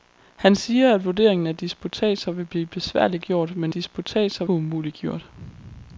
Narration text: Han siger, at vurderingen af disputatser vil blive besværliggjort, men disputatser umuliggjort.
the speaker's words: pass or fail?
pass